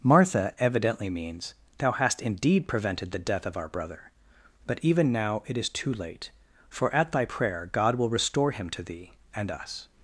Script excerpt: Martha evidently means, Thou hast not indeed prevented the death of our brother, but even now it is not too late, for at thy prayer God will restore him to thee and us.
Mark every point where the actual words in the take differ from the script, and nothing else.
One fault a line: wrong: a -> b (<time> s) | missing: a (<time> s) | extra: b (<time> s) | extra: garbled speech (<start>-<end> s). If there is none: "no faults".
missing: not (2.2 s)
missing: not (5.7 s)